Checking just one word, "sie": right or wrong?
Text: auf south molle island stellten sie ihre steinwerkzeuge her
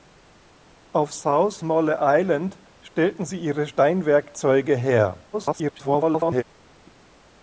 right